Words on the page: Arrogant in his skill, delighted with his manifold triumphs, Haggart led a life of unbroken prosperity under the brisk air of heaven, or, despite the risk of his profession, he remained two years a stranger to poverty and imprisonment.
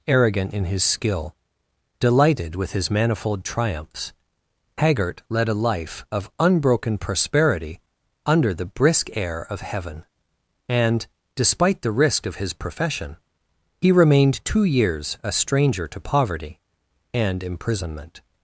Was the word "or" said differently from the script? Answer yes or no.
yes